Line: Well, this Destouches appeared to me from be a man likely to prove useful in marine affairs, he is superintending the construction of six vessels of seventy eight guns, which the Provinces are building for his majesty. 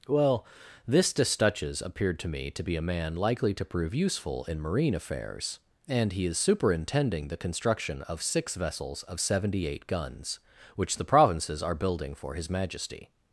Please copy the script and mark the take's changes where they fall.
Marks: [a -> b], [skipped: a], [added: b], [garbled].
Well, this Destouches appeared to me [from -> to] be a man likely to prove useful in marine affairs, [added: and] he is superintending the construction of six vessels of seventy eight guns, which the Provinces are building for his majesty.